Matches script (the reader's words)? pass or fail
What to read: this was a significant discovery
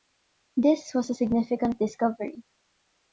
pass